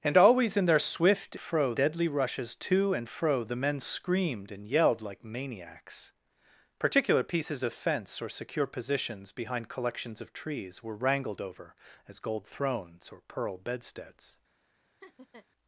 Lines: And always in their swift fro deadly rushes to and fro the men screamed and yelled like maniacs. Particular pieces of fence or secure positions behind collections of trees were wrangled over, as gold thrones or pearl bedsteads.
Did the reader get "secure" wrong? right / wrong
right